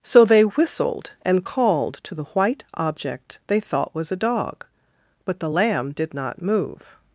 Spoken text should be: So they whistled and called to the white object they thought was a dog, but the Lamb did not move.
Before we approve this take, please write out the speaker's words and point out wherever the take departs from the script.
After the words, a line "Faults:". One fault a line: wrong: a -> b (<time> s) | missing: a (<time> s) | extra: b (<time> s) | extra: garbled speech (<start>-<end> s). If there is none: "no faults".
So they whistled and called to the white object they thought was a dog, but the Lamb did not move.
Faults:
no faults